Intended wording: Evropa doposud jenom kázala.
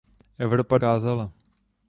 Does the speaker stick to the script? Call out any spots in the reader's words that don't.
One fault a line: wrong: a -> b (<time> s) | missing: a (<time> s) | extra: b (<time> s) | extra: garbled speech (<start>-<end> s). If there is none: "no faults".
missing: doposud jenom (0.8 s)